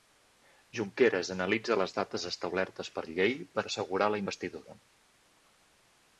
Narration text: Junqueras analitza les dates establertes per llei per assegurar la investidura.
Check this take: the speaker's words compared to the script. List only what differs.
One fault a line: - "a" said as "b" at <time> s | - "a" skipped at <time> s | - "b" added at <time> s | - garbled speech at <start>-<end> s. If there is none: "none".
none